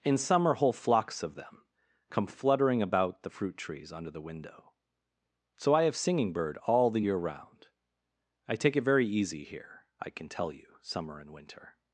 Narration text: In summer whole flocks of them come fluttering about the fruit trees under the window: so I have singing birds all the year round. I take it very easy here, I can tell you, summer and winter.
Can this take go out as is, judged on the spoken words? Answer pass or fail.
fail